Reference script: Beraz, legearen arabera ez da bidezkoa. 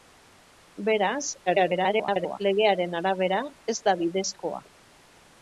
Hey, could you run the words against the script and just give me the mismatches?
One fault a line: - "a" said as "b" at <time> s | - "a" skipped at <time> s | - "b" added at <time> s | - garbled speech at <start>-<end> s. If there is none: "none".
- garbled speech at 1.5-2.4 s